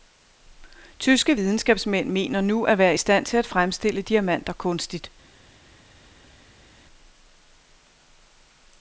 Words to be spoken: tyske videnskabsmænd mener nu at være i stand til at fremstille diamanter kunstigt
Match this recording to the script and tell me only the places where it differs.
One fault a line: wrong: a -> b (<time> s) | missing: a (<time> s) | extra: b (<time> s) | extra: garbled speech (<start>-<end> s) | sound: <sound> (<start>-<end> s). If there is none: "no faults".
no faults